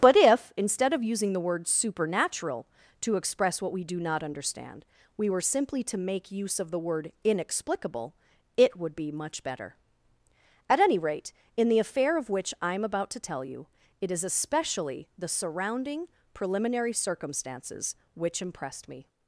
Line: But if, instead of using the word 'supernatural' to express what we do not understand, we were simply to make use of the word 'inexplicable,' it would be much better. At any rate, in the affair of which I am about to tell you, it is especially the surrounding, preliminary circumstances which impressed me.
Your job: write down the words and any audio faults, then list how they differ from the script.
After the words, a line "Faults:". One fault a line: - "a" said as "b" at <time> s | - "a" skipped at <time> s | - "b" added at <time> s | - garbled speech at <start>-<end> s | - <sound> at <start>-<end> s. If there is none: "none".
But if, instead of using the word 'supernatural' to express what we do not understand, we were simply to make use of the word 'inexplicable,' it would be much better. At any rate, in the affair of which I am about to tell you, it is especially the surrounding, preliminary circumstances which impressed me.
Faults:
none